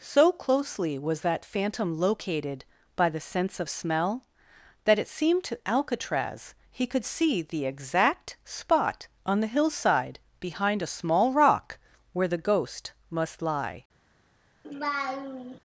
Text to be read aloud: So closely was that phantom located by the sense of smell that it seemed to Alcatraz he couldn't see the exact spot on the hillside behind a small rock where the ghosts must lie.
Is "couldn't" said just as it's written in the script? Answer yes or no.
no